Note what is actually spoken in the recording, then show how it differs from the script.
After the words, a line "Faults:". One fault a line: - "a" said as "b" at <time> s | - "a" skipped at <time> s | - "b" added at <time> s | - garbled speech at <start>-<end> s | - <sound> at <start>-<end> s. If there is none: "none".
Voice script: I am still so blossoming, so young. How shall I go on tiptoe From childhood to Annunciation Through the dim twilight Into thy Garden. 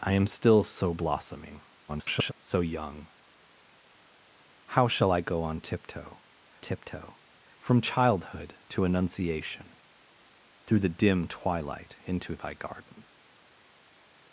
I am still so blossoming, [garbled] so young. How shall I go on tiptoe tiptoe From childhood to Annunciation Through the dim twilight Into thy Garden.
Faults:
- garbled speech at 1.9-2.3 s
- "tiptoe" added at 6.6 s